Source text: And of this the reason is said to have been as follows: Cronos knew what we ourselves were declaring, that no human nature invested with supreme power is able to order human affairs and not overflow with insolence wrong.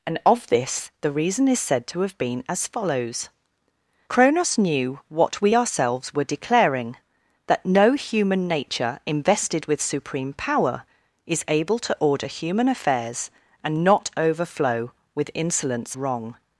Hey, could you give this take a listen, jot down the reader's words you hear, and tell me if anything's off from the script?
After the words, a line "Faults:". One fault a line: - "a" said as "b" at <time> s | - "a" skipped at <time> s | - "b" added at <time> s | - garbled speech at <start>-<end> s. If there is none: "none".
And of this the reason is said to have been as follows: Cronos knew what we ourselves were declaring, that no human nature invested with supreme power is able to order human affairs and not overflow with insolence wrong.
Faults:
none